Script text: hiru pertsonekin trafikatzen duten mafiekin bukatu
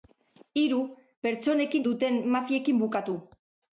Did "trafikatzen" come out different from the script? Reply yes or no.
yes